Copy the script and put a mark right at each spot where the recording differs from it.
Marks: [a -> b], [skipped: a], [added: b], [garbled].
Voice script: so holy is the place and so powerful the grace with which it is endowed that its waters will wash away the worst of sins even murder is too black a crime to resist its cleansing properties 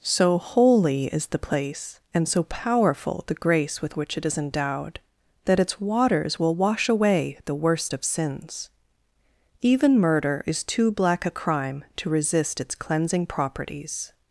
so holy is the place and so powerful the grace with which it is endowed that its waters will wash away the worst of sins even murder is too black a crime to resist its cleansing properties